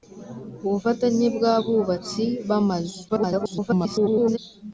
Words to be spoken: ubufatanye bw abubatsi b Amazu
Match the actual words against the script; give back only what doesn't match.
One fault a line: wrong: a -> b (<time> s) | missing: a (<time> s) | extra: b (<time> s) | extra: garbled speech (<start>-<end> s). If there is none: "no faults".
extra: garbled speech (3.1-4.4 s)